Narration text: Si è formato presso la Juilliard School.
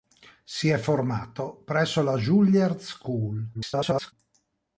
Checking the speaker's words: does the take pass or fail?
fail